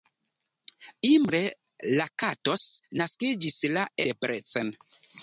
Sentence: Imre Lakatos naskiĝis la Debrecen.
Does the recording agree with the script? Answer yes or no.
yes